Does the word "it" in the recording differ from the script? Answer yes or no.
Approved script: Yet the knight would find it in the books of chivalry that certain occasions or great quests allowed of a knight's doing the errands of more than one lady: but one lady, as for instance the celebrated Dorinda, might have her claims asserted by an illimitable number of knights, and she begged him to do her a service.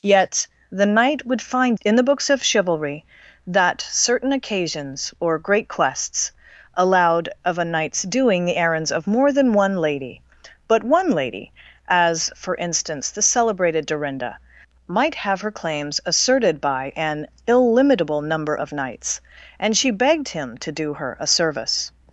yes